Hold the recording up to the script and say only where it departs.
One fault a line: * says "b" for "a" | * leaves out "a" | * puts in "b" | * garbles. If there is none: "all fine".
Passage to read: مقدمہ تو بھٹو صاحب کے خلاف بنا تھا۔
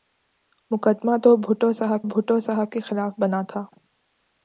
* puts in "بھٹو صاحب"